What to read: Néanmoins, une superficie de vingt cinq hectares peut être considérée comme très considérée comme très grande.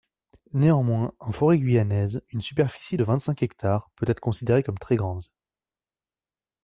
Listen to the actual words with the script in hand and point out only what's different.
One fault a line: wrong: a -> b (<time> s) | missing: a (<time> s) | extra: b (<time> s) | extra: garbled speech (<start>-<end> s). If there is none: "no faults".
extra: en forêt guyanaise (1.2 s)
missing: considérée comme très (4.9 s)